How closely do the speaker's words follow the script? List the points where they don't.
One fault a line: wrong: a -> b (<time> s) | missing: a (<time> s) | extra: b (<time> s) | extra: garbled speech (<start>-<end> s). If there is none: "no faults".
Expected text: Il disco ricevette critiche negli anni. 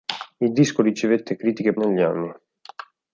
no faults